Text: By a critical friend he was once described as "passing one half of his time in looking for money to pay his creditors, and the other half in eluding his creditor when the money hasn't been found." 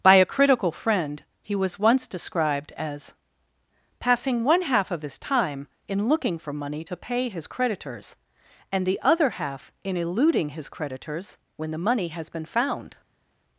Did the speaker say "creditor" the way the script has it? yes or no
no